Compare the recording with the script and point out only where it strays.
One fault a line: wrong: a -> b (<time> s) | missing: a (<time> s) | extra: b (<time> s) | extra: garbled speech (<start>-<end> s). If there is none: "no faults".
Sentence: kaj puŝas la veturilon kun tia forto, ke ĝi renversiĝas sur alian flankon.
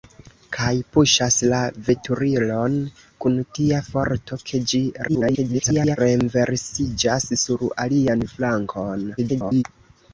extra: garbled speech (5.1-6.0 s)
extra: garbled speech (9.2-9.6 s)